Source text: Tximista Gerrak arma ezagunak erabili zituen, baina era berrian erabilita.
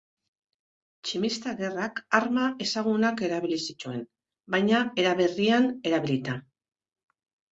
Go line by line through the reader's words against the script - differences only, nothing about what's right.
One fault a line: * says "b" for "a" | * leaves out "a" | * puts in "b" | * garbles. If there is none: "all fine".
all fine